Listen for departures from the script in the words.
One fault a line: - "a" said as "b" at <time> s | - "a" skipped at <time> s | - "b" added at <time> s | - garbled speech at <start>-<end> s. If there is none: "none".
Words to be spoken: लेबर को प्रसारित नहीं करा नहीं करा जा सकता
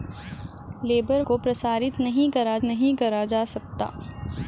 none